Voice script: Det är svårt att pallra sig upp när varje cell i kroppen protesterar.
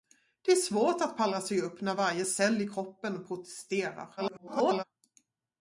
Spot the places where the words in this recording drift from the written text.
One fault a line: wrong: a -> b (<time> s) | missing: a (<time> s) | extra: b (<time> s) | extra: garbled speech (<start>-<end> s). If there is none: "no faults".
extra: garbled speech (4.2-4.8 s)